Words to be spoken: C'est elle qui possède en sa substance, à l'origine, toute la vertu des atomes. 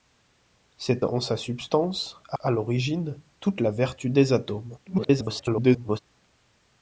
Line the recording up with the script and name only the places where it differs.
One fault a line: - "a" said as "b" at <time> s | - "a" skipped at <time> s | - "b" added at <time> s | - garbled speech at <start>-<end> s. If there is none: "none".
- "elle qui possède" skipped at 1.1 s
- "à" added at 2.4 s
- garbled speech at 4.9-6.0 s